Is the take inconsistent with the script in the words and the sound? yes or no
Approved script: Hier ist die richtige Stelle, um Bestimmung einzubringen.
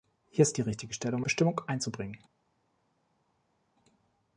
no